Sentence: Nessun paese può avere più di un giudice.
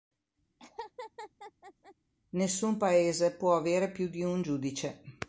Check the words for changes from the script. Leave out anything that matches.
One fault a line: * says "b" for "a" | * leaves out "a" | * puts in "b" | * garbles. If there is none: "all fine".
all fine